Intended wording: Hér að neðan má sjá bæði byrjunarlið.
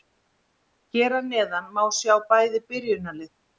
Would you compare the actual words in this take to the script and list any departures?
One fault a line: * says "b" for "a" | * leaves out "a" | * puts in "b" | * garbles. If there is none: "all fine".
all fine